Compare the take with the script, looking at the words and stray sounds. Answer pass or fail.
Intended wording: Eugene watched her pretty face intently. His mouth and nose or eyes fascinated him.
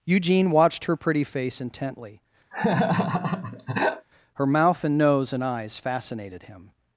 fail